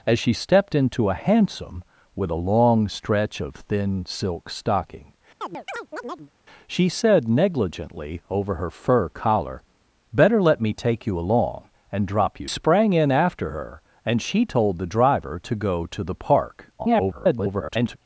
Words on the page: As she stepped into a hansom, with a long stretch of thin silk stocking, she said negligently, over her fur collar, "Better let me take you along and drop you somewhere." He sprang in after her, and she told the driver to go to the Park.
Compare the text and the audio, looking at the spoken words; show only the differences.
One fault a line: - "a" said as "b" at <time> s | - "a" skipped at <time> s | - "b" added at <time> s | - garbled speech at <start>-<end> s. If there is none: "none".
- "somewhere He" skipped at 12.5 s
- garbled speech at 16.8-18.0 s